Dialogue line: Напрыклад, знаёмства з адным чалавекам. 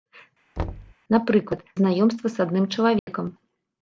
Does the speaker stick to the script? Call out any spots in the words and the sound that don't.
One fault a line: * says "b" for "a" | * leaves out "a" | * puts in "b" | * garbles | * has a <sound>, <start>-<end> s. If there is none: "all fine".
* has a thud, 0.6-0.9 s
* has a dropout, 3.0-3.1 s